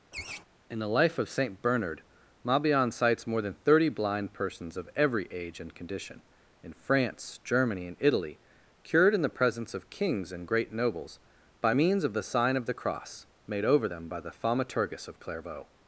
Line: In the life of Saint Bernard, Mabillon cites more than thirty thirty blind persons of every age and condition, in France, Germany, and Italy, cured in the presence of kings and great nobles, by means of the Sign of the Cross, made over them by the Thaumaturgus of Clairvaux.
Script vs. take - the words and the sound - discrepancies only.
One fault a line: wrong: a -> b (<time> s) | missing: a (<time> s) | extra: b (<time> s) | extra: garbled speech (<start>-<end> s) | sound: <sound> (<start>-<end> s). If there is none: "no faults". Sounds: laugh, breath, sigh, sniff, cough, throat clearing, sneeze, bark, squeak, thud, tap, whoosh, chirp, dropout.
sound: laugh (0.1-0.4 s)
missing: thirty (3.9 s)